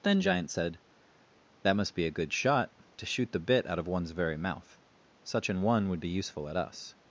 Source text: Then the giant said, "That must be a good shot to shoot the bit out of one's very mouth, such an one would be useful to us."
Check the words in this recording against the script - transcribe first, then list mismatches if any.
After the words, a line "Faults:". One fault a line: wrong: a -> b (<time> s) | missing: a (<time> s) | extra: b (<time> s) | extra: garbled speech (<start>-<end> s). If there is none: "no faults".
Then giant said, "That must be a good shot to shoot the bit out of one's very mouth, such an one would be useful at us."
Faults:
missing: the (0.2 s)
wrong: to -> at (6.5 s)